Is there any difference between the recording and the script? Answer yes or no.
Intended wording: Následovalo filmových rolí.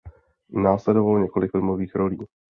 yes